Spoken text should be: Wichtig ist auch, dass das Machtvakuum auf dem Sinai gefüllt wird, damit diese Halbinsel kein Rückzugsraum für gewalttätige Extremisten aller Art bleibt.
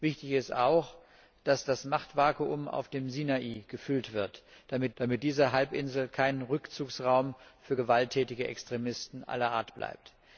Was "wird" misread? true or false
false